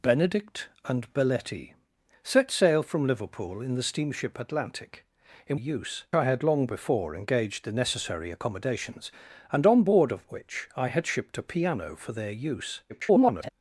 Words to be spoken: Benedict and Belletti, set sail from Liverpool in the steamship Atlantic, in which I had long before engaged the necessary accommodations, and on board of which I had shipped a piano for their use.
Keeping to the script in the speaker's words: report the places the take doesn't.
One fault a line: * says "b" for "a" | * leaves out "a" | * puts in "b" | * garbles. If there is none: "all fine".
* says "use" for "which"
* garbles